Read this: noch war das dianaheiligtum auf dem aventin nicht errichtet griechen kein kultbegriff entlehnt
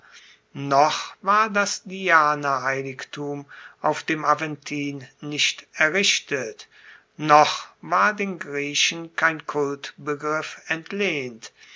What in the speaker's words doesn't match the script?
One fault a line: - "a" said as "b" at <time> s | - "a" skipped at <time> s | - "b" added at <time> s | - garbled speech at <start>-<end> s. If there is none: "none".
- "noch war den" added at 7.2 s